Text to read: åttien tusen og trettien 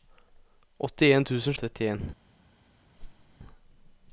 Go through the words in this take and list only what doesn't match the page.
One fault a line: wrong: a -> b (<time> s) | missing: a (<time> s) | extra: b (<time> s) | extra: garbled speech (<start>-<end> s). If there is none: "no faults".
no faults